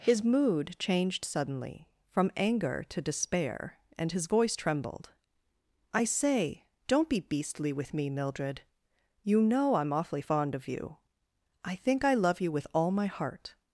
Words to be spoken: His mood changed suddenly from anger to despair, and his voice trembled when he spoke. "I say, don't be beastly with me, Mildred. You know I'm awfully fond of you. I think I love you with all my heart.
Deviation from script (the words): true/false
true